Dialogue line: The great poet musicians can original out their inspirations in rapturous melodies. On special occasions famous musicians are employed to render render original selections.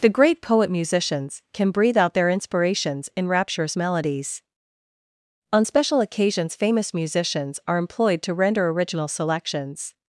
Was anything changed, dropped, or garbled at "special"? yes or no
no